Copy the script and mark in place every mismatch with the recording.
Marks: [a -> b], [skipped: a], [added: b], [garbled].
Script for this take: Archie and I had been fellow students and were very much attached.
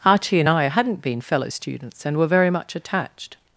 Archie and I [had -> hadn't] been fellow students and were very much attached.